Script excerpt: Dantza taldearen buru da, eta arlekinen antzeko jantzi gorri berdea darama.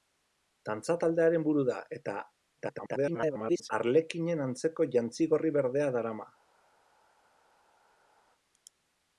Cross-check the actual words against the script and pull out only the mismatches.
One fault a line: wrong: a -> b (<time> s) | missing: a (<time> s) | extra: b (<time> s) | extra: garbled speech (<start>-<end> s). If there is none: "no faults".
extra: garbled speech (2.6-3.7 s)